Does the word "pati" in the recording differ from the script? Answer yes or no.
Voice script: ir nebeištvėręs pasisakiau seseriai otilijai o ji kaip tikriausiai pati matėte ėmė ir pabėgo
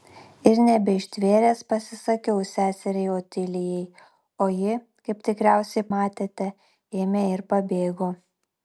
yes